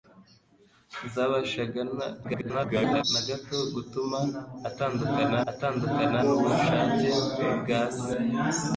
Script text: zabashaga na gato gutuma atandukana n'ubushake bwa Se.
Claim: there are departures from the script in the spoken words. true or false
true